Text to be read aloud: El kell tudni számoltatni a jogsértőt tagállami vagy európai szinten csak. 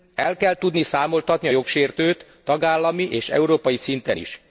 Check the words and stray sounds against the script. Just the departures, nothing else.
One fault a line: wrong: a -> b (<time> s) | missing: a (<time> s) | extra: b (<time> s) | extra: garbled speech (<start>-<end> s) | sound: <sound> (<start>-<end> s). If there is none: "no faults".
wrong: vagy -> és (3.1 s)
wrong: csak -> is (4.2 s)